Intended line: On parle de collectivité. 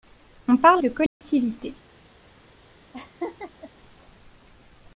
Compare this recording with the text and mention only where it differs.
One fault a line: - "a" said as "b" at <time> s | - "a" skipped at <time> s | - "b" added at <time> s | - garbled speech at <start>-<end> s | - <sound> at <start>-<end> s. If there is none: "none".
- dropout at 1.1-1.2 s
- laugh at 2.9-3.7 s